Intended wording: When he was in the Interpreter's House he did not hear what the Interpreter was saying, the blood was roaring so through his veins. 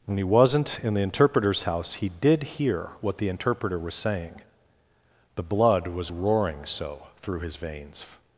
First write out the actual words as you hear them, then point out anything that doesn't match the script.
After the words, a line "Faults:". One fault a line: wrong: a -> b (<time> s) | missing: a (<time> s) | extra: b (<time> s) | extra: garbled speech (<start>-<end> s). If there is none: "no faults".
When he wasn't in the Interpreter's House he did hear what the Interpreter was saying, the blood was roaring so through his veins.
Faults:
wrong: was -> wasn't (0.2 s)
missing: not (2.4 s)